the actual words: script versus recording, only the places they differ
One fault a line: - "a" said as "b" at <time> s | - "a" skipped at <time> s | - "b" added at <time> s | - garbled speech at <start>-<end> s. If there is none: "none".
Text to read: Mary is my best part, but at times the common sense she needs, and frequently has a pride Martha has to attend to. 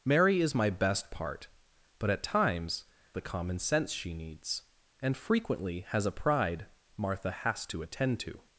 none